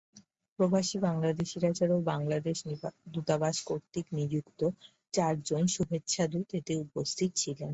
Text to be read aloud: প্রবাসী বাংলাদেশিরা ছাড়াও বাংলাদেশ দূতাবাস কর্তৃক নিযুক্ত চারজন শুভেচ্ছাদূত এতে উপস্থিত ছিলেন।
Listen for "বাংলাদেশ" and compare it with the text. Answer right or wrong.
right